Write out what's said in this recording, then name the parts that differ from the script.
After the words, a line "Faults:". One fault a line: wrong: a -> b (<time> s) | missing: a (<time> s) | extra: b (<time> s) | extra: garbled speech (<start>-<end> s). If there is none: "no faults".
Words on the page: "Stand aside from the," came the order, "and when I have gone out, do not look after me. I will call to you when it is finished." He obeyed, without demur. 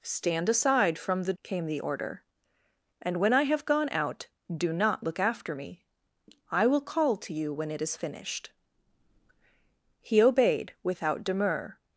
"Stand aside from the," came the order, "and when I have gone out, do not look after me. I will call to you when it is finished." He obeyed, without demur.
Faults:
no faults